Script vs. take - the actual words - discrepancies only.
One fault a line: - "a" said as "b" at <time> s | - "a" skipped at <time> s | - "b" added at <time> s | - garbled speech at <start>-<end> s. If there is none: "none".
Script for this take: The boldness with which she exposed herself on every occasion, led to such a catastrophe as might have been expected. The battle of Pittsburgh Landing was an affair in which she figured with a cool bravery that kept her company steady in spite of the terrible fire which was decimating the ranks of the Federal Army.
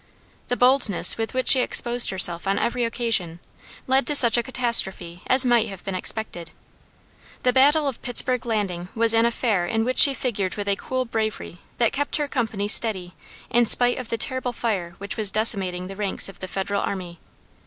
none